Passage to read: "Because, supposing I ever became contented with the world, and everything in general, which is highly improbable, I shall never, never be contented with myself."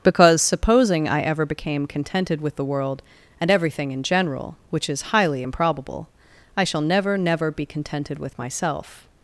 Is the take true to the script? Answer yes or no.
yes